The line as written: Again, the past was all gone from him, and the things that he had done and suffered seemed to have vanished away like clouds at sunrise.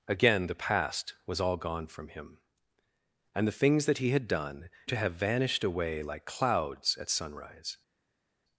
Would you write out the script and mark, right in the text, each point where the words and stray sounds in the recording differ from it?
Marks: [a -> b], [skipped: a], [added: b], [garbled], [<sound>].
Again, the past was all gone from him, and the things that he had done [skipped: and suffered seemed] to have vanished away like clouds at sunrise.